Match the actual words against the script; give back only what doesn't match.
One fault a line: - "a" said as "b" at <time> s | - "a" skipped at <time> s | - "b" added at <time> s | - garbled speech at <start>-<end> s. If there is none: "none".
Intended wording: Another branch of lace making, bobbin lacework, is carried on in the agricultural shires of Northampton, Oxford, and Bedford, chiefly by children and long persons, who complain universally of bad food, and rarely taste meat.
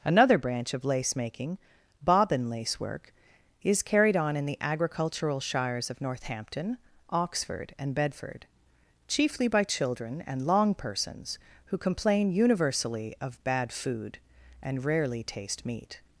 none